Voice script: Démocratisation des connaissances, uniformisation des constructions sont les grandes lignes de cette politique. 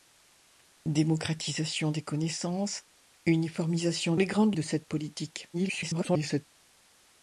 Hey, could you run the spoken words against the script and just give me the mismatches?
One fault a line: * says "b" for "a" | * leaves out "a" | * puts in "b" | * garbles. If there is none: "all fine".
* leaves out "des constructions sont"
* leaves out "lignes"
* garbles